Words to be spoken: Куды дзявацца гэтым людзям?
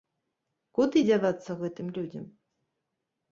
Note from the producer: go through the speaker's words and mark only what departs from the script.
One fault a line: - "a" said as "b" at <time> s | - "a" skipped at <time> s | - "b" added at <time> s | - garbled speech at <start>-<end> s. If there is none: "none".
none